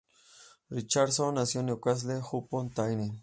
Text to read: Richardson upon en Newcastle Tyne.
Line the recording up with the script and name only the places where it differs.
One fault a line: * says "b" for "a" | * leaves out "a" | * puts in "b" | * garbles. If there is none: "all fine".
* says "nació" for "upon"
* puts in "upon"